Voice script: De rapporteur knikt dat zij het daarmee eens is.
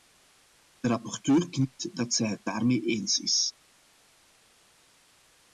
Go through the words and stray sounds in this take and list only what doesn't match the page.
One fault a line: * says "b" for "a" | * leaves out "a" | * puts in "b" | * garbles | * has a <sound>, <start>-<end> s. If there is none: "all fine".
all fine